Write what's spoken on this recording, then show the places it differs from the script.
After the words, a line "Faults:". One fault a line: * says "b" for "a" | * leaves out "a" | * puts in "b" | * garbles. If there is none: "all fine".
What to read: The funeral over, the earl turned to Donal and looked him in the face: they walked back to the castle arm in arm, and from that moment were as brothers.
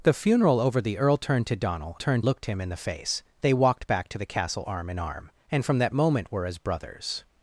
The funeral over, the earl turned to Donal turned looked him in the face: they walked back to the castle arm in arm, and from that moment were as brothers.
Faults:
* says "turned" for "and"